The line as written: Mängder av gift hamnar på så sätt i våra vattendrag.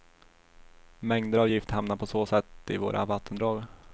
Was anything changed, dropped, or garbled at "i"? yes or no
no